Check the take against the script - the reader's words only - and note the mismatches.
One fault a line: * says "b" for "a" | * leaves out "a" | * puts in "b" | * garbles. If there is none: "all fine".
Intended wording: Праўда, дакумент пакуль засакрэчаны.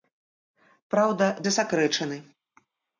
* leaves out "дакумент пакуль"